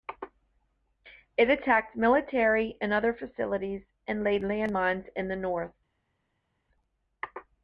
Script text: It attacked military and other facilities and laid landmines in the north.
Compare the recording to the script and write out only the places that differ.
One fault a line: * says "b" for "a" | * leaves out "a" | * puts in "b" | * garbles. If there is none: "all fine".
all fine